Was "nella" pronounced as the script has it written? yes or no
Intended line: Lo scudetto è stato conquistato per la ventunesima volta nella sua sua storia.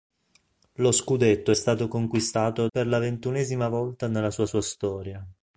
yes